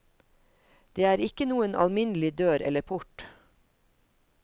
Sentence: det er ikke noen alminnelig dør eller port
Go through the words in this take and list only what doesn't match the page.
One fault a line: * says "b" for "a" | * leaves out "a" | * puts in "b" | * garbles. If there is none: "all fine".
all fine